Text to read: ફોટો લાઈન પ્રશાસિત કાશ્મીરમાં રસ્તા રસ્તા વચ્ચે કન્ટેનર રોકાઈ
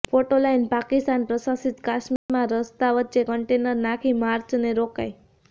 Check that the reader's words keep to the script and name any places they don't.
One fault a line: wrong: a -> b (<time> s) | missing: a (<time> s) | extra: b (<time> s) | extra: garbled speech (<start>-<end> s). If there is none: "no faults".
extra: પાકિસ્તાન (0.7 s)
missing: રસ્તા (2.9 s)
extra: નાખી માર્ચને (3.8 s)